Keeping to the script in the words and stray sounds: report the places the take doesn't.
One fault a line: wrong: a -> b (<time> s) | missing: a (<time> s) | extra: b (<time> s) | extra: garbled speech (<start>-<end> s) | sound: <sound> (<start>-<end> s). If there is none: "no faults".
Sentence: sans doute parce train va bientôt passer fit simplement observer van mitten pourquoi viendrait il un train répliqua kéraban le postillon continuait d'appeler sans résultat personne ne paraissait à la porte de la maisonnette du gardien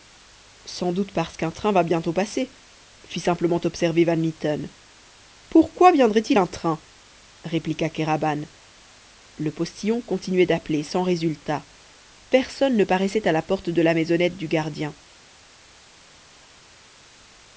extra: qu'un (1.4 s)